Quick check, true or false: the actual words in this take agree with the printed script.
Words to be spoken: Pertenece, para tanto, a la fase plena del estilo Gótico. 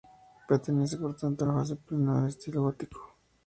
false